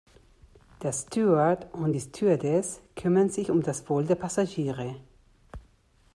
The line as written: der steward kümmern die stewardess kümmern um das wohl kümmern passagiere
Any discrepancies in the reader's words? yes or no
yes